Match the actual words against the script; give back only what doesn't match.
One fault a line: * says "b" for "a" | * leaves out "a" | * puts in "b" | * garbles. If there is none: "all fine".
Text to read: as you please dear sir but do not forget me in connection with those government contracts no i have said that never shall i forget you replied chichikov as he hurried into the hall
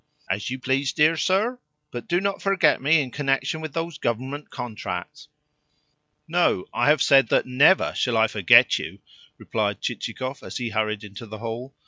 all fine